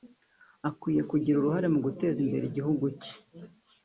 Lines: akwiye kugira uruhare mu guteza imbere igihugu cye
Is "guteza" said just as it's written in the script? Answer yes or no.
yes